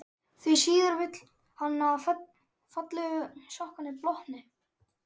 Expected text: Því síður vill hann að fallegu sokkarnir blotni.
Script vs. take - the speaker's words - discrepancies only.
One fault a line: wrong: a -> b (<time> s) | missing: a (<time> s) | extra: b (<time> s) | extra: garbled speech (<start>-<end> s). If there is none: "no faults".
no faults